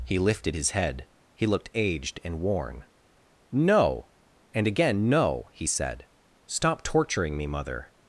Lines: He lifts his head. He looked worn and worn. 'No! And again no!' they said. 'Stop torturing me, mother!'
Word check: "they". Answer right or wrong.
wrong